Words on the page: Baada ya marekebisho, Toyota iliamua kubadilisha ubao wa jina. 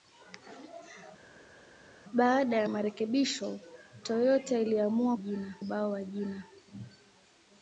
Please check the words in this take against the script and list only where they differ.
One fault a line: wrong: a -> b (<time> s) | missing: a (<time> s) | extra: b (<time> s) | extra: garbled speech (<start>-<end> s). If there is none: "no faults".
wrong: kubadilisha -> jina (5.1 s)